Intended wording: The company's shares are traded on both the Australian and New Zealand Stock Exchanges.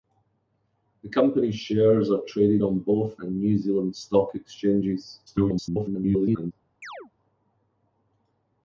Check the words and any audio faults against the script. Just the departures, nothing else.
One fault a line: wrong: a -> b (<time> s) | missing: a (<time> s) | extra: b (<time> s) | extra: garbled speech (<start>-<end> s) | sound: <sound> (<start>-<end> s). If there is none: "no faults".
missing: the Australian (3.2 s)
extra: garbled speech (5.3-6.5 s)
sound: chirp (6.8-7.1 s)